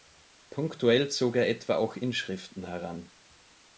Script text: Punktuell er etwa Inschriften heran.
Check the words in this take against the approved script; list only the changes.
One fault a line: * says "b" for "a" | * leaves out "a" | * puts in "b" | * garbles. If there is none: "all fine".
* puts in "zog"
* puts in "auch"